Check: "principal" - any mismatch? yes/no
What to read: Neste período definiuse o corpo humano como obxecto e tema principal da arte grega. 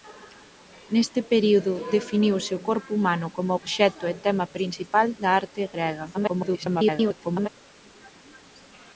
no